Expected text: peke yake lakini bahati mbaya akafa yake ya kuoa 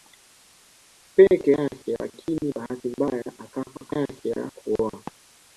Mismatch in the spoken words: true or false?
false